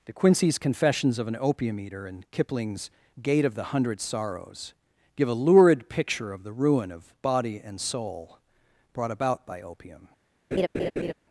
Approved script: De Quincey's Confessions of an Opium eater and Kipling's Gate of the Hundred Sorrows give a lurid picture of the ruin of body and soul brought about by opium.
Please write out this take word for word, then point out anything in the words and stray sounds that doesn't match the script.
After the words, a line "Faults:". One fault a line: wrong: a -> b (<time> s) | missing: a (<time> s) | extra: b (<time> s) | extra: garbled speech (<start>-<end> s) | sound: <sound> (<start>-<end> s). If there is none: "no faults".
De Quincey's Confessions of an Opium eater and Kipling's Gate of the Hundred Sorrows give a lurid picture of the ruin of body and soul brought about by opium.
Faults:
sound: laugh (10.5-11.1 s)